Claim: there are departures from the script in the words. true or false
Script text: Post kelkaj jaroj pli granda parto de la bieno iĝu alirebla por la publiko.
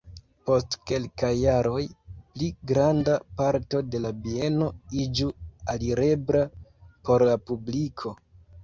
false